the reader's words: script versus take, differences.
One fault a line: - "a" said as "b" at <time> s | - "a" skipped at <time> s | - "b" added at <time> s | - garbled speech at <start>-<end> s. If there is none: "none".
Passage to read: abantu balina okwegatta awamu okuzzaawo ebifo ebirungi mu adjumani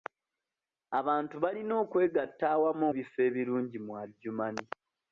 - "okuzzaawo" skipped at 2.9 s